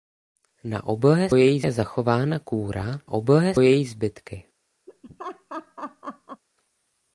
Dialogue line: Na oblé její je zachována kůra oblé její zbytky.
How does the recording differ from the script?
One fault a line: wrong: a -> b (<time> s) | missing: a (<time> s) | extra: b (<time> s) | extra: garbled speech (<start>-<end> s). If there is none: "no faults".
no faults